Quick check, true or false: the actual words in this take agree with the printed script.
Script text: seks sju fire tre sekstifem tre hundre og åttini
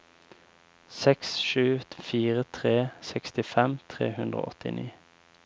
true